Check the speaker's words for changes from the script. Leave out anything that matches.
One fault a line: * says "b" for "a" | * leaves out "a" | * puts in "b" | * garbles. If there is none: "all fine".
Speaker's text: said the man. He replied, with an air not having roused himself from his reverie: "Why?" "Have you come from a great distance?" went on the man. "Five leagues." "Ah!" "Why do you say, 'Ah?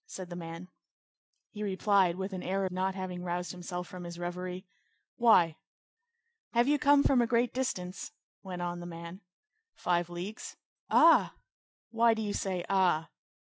all fine